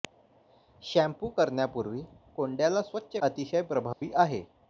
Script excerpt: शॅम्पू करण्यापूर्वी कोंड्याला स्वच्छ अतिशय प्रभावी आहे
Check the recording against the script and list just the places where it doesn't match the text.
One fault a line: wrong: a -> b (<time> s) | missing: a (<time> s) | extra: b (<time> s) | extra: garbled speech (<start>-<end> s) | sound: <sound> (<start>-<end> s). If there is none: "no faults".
sound: dropout (3.9-4.0 s)